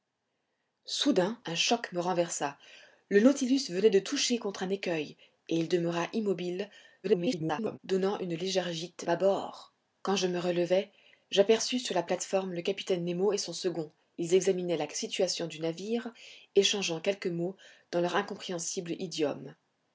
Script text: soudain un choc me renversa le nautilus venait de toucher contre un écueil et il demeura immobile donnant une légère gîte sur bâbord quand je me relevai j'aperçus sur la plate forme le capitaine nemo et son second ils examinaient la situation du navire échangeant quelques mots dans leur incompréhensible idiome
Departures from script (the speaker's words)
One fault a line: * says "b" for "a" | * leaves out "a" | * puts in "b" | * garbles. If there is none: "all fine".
* garbles
* leaves out "sur"